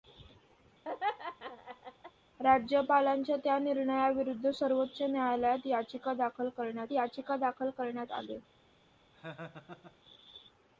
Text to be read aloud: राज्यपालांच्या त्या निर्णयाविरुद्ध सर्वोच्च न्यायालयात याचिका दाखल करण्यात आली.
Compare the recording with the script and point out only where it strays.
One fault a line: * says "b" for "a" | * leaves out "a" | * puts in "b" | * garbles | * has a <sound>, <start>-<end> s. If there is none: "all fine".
* has a laugh, 0.8-2.1 s
* puts in "याचिका दाखल करण्यात"
* has a laugh, 9.1-10.0 s